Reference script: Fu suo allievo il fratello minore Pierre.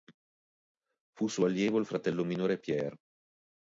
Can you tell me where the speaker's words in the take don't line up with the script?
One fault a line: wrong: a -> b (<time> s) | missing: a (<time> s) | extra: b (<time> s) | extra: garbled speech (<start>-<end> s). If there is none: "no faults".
no faults